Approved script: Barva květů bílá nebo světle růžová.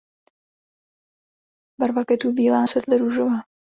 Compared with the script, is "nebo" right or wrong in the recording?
wrong